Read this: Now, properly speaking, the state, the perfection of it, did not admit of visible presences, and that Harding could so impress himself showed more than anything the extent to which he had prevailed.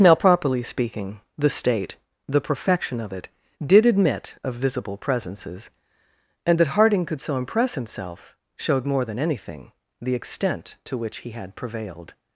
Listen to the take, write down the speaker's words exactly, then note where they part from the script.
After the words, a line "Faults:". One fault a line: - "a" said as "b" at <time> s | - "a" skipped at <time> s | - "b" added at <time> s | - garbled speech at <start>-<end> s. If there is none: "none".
Now, properly speaking, the state, the perfection of it, did admit of visible presences, and that Harding could so impress himself showed more than anything the extent to which he had prevailed.
Faults:
- "not" skipped at 3.9 s